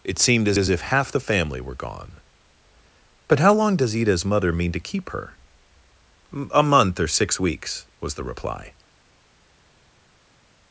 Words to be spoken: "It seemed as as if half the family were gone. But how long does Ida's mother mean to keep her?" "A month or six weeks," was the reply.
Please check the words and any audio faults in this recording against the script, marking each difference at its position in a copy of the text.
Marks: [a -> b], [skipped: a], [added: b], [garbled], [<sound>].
"It seemed as as if half the family were gone. But how long does Ida's mother mean to keep her?" "A month or six weeks," was the reply.